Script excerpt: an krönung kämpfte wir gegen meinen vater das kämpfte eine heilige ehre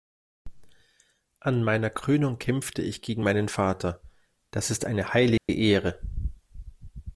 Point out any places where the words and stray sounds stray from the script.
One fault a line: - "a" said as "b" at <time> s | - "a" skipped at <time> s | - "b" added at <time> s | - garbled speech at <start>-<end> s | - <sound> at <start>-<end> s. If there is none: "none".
- "meiner" added at 1.6 s
- "wir" said as "ich" at 2.8 s
- "kämpfte" said as "ist" at 4.7 s
- dropout at 5.4-5.5 s